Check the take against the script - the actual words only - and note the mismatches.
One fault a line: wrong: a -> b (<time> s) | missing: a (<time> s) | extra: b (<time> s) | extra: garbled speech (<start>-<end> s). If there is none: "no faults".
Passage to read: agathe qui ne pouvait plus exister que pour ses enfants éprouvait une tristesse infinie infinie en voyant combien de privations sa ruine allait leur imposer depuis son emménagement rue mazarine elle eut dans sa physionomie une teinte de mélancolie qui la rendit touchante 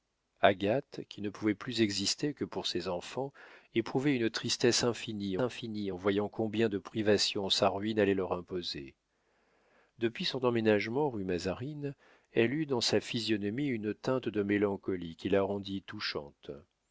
no faults